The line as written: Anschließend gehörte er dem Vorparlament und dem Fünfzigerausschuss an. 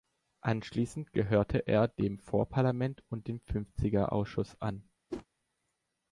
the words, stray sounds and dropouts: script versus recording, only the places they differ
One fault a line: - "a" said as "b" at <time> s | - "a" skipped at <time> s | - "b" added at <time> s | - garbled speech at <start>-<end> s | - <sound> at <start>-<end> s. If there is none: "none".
- whoosh at 5.1-5.3 s